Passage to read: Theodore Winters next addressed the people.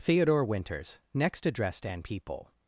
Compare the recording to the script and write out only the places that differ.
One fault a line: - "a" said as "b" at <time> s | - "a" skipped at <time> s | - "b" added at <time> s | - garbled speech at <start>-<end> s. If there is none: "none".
- "the" said as "an" at 1.9 s